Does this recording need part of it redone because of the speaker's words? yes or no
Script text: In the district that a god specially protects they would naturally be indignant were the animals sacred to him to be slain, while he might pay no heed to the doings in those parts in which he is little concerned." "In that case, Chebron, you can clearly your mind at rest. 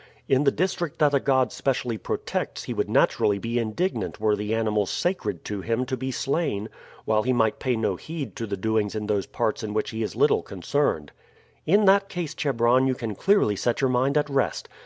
yes